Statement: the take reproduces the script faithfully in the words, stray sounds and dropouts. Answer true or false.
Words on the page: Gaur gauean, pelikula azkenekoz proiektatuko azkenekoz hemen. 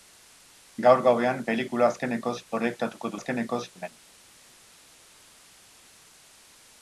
true